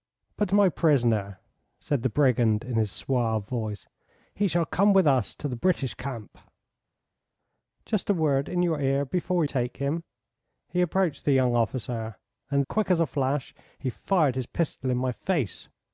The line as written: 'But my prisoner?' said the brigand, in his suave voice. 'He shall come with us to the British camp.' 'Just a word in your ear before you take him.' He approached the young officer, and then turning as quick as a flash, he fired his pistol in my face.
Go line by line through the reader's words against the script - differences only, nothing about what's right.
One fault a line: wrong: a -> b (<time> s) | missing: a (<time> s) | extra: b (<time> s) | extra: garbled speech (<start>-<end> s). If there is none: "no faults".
missing: you (9.4 s)
missing: then turning as (12.6 s)